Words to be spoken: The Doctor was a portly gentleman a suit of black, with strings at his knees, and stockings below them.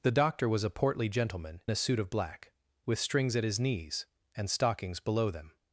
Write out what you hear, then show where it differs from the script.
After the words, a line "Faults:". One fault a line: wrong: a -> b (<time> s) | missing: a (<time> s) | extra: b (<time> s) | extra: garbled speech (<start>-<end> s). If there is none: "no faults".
The Doctor was a portly gentleman a suit of black, with strings at his knees, and stockings below them.
Faults:
no faults